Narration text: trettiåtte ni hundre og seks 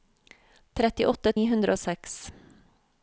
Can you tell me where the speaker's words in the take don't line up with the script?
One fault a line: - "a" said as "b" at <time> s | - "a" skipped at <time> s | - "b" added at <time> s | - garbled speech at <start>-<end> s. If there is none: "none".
none